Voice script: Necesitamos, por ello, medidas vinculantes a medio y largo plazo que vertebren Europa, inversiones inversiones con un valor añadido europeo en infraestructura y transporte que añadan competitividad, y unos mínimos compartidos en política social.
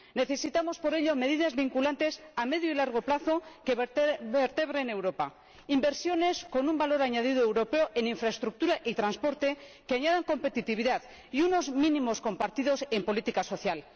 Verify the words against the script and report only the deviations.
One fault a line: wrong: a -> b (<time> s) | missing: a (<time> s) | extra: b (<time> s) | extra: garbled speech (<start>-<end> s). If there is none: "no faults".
missing: inversiones (6.5 s)